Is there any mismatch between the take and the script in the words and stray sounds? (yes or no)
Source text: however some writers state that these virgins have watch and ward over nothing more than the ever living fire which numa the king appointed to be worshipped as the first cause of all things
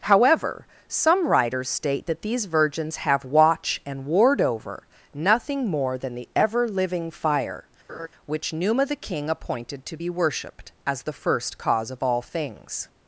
yes